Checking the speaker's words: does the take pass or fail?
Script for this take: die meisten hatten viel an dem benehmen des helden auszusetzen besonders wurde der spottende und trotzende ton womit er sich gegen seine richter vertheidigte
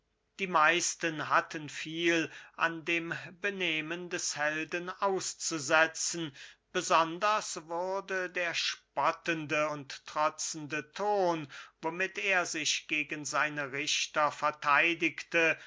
pass